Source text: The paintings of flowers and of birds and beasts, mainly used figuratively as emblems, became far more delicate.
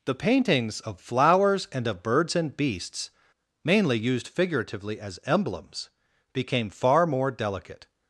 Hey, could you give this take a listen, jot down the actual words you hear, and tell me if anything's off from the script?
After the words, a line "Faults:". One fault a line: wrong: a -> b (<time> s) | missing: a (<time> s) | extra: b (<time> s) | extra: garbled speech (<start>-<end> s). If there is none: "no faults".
The paintings of flowers and of birds and beasts, mainly used figuratively as emblems, became far more delicate.
Faults:
no faults